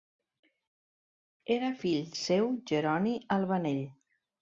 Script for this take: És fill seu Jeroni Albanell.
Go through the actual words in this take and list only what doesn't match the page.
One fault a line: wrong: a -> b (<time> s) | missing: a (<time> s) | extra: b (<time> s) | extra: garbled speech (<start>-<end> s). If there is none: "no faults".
wrong: És -> Era (1.6 s)